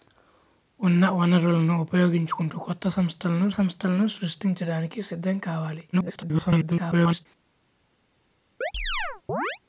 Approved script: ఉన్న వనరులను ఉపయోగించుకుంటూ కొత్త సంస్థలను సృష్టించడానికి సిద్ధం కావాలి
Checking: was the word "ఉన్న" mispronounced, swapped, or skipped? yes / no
no